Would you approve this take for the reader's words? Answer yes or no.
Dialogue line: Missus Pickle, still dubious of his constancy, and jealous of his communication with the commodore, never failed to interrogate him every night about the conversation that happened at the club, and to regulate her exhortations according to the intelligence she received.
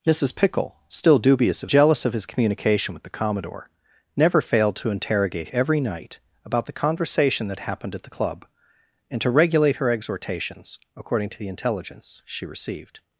no